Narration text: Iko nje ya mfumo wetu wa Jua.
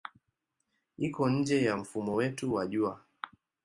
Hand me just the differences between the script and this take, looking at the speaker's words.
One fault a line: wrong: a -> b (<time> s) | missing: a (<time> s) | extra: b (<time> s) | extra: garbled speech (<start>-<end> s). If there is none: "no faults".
no faults